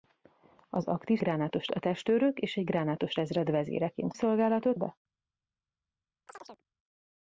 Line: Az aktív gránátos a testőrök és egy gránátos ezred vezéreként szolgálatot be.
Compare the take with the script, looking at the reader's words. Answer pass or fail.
pass